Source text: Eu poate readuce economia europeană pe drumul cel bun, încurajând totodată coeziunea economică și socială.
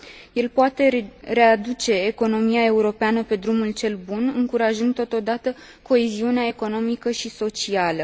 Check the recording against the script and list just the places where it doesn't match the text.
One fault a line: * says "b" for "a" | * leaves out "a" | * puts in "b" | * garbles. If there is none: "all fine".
* says "El" for "Eu"